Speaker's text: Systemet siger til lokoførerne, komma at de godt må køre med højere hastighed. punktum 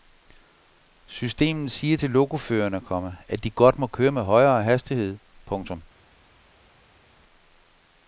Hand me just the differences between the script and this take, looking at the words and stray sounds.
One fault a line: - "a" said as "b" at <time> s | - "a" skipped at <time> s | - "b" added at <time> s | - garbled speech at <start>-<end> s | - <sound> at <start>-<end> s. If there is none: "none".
none